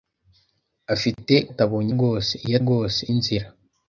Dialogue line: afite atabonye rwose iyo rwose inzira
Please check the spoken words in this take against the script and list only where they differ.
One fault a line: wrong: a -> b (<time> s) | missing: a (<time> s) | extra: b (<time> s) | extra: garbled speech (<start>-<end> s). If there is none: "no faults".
no faults